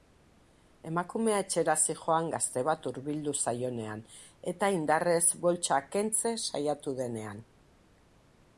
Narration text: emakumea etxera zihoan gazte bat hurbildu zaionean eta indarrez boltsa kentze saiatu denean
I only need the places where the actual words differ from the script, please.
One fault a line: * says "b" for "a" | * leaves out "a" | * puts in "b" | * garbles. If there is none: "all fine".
all fine